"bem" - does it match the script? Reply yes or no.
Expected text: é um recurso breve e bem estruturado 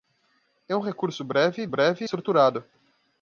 no